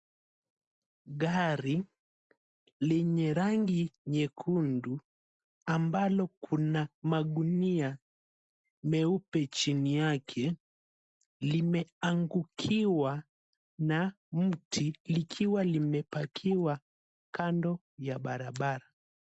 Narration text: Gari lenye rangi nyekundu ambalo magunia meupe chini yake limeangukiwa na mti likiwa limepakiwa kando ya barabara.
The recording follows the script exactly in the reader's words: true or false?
false